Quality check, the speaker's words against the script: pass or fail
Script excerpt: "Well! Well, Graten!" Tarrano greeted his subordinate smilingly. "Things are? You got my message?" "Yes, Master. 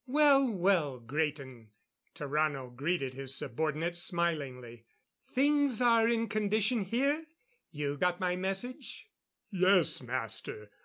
fail